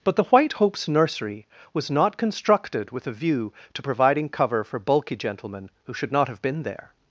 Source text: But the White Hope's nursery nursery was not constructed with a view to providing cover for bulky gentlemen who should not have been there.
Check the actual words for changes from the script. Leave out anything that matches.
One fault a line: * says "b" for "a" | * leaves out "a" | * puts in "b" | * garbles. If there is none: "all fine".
* leaves out "nursery"